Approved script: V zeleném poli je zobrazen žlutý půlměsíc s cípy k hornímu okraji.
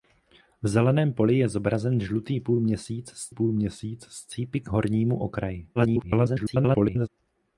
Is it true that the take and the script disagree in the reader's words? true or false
true